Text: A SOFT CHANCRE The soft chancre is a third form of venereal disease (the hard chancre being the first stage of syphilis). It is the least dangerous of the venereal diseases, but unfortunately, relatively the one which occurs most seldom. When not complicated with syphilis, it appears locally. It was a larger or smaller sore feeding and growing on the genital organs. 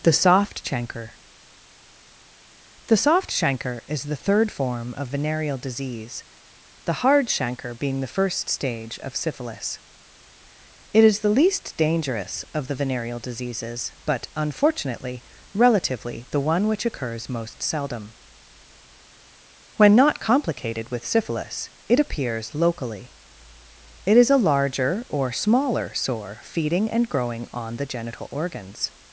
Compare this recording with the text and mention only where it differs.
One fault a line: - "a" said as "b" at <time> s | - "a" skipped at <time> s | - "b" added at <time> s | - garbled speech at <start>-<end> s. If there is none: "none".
- "A" said as "THE" at 0.0 s
- "a" said as "the" at 4.0 s
- "was" said as "is" at 24.1 s